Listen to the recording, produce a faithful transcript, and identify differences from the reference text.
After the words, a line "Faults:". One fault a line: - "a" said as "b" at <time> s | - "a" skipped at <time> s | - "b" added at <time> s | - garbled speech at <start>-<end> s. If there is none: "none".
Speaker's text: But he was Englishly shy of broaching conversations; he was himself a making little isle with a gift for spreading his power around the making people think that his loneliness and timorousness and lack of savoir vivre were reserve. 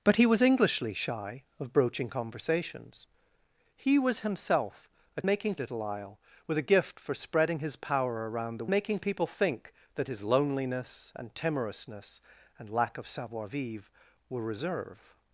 But he was Englishly shy of broaching conversations; he was himself a making little isle with a gift for spreading his power around the making people think that his loneliness and timorousness and lack of savoir vivre were reserve.
Faults:
none